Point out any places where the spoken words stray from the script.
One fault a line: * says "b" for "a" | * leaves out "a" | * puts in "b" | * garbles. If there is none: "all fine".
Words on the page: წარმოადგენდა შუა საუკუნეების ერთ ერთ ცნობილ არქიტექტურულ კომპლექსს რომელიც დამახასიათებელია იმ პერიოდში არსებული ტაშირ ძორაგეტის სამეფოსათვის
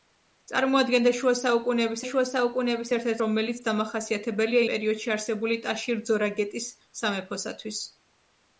* puts in "შუა საუკუნეების"
* leaves out "ცნობილ არქიტექტურულ კომპლექსს"
* leaves out "იმ"